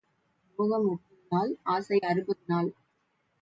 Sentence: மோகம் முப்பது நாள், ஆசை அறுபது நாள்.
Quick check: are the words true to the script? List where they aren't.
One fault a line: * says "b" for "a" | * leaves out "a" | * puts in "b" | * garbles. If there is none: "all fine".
all fine